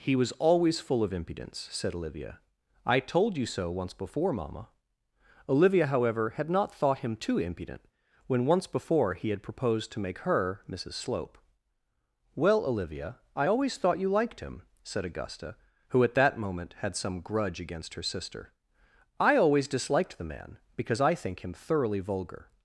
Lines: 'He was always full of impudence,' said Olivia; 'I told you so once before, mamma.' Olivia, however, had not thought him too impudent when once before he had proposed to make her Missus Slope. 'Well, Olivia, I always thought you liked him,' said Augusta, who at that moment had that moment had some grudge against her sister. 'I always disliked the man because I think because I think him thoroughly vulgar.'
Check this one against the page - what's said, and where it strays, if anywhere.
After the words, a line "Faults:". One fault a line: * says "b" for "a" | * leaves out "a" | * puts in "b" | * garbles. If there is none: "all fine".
'He was always full of impudence,' said Olivia; 'I told you so once before, mamma.' Olivia, however, had not thought him too impudent when once before he had proposed to make her Missus Slope. 'Well, Olivia, I always thought you liked him,' said Augusta, who at that moment had some grudge against her sister. 'I always disliked the man because I think him thoroughly vulgar.'
Faults:
* leaves out "that moment had"
* leaves out "because I think"